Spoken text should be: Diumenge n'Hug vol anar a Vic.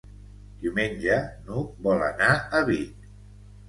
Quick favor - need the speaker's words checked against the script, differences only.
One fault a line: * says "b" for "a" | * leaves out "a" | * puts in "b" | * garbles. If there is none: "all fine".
all fine